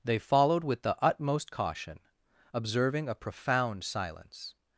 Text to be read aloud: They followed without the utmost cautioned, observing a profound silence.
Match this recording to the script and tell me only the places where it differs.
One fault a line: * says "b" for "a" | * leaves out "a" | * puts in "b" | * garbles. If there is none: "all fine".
* says "with" for "without"
* says "caution" for "cautioned"